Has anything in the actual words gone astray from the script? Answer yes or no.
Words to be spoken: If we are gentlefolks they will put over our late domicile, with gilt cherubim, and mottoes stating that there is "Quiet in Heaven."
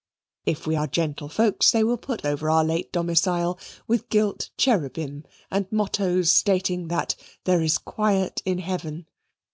no